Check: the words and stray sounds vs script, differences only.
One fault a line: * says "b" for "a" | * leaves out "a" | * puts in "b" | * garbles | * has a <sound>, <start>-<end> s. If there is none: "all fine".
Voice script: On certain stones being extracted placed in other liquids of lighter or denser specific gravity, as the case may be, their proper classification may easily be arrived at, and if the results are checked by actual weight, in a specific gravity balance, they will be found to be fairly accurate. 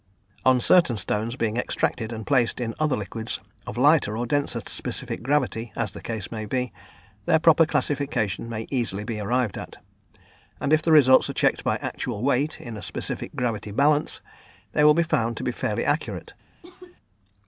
* puts in "and"
* has a cough, 16.6-17.0 s